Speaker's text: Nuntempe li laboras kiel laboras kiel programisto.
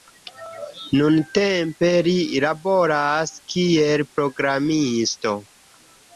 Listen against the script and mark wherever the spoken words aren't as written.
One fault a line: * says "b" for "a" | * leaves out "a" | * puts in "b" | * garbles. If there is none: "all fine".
* leaves out "laboras kiel"